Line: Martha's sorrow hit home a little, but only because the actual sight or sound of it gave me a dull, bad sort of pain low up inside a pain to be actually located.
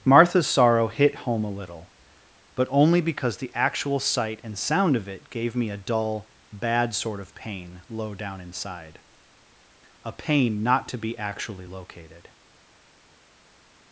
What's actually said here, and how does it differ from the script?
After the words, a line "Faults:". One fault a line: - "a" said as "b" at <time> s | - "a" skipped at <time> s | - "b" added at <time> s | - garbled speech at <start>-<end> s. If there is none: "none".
Martha's sorrow hit home a little, but only because the actual sight and sound of it gave me a dull, bad sort of pain low down inside a pain not to be actually located.
Faults:
- "or" said as "and" at 4.4 s
- "up" said as "down" at 8.1 s
- "not" added at 10.6 s